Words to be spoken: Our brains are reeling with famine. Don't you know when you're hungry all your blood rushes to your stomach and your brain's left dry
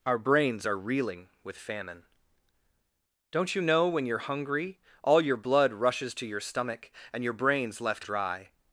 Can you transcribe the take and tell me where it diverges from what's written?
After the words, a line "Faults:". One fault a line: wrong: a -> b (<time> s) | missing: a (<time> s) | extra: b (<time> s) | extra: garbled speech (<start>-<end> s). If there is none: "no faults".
Our brains are reeling with famine. Don't you know when you're hungry all your blood rushes to your stomach and your brain's left dry
Faults:
no faults